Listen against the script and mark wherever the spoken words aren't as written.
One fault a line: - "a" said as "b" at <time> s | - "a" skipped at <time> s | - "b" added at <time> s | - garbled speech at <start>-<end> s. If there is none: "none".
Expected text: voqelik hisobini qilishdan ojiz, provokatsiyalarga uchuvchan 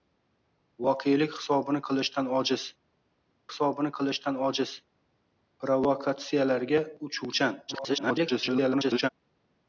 - "hisobini qilishdan ojiz" added at 3.5 s
- garbled speech at 7.7-9.1 s